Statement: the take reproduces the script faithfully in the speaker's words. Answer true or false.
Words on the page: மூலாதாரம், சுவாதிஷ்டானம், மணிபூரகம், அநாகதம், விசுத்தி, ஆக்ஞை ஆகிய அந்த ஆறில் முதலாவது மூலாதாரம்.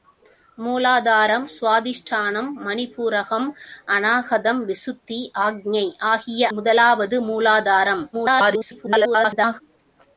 false